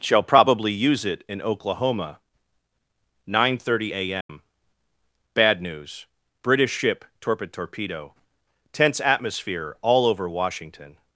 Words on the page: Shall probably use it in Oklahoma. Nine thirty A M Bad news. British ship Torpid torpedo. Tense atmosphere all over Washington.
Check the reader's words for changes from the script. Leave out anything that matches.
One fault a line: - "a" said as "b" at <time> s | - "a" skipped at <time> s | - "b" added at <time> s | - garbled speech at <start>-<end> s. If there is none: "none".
none